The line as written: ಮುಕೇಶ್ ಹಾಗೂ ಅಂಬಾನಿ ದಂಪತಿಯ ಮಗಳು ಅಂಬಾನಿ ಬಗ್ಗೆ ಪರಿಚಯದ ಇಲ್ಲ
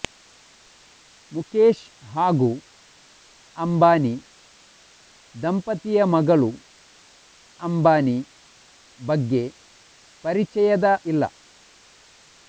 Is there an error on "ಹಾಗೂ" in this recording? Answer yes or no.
no